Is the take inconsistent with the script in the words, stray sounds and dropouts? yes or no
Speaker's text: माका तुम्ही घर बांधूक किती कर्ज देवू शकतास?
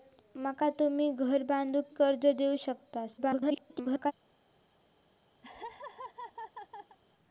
yes